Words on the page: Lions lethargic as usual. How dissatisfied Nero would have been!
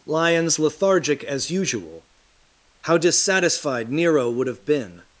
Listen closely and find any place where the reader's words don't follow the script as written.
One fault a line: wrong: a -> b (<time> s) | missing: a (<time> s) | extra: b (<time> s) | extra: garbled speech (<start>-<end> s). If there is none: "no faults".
no faults